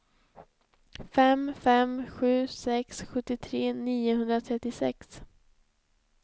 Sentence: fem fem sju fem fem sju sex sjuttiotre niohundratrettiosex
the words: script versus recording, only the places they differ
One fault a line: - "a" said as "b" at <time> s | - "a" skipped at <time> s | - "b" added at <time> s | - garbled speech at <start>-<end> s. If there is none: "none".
- "fem fem sju" skipped at 2.3 s